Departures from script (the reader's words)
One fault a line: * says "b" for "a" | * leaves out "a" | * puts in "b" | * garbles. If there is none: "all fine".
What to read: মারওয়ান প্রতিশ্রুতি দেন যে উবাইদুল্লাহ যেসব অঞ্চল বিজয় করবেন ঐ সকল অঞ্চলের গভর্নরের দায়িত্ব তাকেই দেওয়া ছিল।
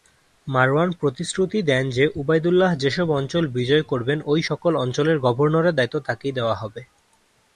* says "হবে" for "ছিল"